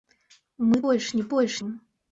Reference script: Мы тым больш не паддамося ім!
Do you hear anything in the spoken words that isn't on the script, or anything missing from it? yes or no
yes